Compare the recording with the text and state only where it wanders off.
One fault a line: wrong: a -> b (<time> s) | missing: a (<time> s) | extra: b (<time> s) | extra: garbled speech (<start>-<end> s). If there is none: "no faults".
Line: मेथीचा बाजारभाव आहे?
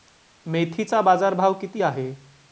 extra: किती (1.5 s)